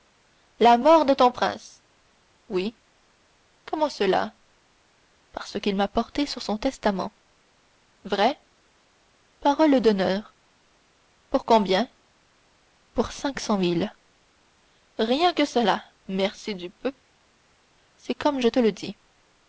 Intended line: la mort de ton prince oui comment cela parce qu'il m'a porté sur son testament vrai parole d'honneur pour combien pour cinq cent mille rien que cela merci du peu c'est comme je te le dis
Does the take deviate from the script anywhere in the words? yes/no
no